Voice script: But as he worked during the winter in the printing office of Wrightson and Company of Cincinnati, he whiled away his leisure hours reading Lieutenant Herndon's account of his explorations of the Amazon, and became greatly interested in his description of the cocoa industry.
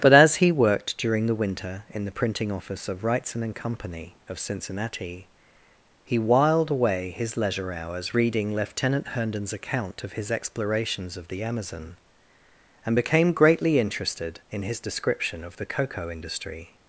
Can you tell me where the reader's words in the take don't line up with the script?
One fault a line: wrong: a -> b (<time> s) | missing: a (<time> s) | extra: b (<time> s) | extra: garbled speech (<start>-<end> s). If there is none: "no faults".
no faults